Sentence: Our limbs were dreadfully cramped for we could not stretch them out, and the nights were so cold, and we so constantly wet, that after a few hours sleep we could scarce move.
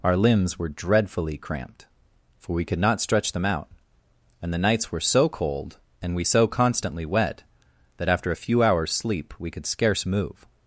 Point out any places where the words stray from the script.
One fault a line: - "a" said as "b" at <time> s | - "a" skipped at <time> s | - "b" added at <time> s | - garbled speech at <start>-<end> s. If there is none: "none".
none